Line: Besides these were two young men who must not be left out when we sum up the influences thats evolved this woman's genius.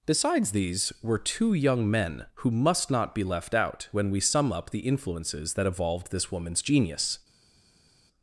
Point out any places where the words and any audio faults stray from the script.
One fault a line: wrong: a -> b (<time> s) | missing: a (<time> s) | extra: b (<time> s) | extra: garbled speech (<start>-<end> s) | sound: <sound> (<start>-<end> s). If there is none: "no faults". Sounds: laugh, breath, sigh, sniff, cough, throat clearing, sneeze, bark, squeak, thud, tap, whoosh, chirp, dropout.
wrong: thats -> that (5.5 s)